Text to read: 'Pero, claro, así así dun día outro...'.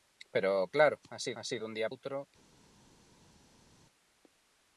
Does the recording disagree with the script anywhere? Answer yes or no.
no